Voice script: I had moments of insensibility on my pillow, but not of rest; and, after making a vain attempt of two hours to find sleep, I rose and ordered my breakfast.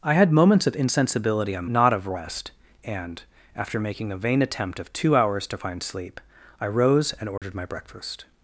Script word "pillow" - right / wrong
wrong